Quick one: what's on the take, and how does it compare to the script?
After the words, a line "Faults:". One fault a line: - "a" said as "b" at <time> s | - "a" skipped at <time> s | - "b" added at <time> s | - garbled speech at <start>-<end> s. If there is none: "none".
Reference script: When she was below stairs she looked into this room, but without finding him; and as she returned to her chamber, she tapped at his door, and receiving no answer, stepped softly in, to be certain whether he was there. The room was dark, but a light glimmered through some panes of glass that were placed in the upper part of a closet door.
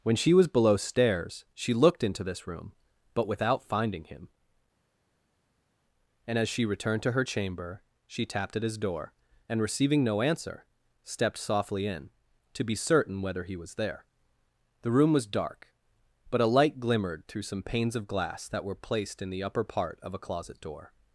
When she was below stairs she looked into this room, but without finding him; and as she returned to her chamber, she tapped at his door, and receiving no answer, stepped softly in, to be certain whether he was there. The room was dark, but a light glimmered through some panes of glass that were placed in the upper part of a closet door.
Faults:
none